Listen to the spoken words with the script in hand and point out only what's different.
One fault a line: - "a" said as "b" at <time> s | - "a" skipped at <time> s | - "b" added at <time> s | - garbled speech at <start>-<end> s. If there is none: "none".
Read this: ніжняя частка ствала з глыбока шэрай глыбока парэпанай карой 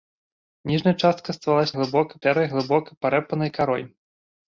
none